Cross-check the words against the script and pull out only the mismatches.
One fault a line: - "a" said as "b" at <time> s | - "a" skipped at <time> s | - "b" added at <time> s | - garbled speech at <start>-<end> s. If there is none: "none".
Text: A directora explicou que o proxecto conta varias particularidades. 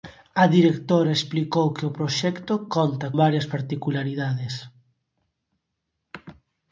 none